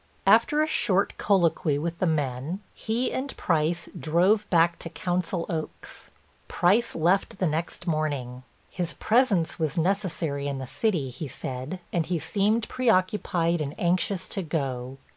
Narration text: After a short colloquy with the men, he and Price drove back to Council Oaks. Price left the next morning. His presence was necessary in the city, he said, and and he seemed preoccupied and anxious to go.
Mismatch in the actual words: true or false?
true